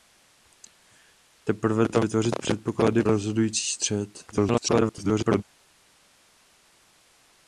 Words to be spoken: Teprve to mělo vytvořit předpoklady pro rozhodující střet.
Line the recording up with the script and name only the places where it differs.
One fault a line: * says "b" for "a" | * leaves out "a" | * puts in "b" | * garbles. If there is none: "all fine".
* leaves out "mělo"
* leaves out "pro"
* garbles